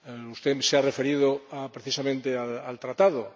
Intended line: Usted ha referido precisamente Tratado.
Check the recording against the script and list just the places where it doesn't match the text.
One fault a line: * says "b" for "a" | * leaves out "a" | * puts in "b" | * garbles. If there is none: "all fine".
* puts in "se"
* puts in "al"